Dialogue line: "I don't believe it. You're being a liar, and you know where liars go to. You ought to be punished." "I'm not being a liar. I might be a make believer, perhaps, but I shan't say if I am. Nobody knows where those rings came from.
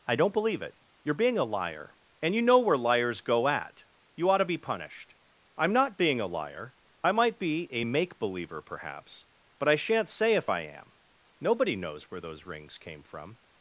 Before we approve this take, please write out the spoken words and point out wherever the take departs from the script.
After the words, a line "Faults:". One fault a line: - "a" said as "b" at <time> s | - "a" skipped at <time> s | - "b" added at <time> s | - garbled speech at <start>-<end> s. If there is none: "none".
"I don't believe it. You're being a liar, and you know where liars go at. You ought to be punished." "I'm not being a liar. I might be a make believer, perhaps, but I shan't say if I am. Nobody knows where those rings came from.
Faults:
- "to" said as "at" at 3.5 s